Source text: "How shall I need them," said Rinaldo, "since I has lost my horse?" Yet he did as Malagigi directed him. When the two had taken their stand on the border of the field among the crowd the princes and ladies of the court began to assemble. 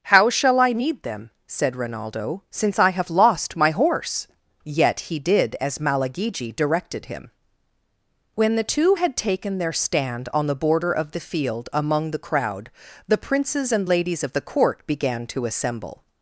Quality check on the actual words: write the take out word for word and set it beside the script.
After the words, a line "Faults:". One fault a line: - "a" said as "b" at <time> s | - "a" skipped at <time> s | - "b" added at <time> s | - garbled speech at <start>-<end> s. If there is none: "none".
"How shall I need them," said Rinaldo, "since I have lost my horse?" Yet he did as Malagigi directed him. When the two had taken their stand on the border of the field among the crowd the princes and ladies of the court began to assemble.
Faults:
- "has" said as "have" at 2.9 s